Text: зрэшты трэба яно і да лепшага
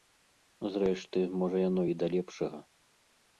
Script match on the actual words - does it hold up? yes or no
no